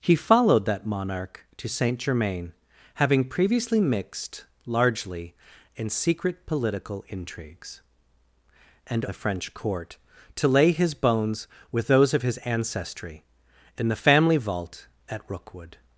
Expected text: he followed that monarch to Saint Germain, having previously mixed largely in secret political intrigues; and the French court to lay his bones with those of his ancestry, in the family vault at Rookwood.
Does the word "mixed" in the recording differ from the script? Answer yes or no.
no